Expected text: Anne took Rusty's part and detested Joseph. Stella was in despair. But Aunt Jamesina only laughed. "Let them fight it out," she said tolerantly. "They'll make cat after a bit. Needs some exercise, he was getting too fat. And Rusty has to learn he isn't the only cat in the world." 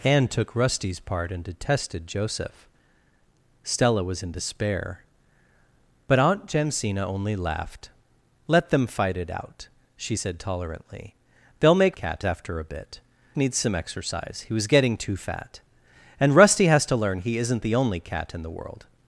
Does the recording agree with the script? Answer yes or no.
yes